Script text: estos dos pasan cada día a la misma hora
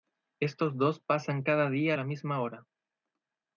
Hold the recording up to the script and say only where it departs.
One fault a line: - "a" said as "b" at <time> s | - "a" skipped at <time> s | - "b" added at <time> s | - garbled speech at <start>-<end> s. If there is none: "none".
none